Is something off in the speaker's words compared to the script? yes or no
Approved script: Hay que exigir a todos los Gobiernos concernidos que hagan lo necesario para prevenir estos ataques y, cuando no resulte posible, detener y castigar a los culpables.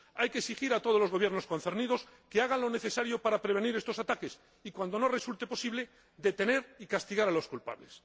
no